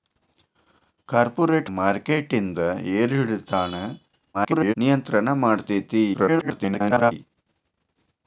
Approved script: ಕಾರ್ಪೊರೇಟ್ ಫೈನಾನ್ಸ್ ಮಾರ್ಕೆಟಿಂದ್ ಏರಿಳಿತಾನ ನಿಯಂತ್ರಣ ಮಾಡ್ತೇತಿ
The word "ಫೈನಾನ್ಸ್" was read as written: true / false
false